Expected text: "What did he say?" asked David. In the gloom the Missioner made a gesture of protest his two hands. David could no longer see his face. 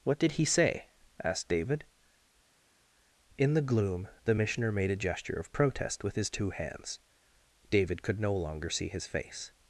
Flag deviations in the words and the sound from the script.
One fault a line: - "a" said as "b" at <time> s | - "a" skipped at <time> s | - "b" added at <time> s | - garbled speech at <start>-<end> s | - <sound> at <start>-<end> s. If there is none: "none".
- "with" added at 6.0 s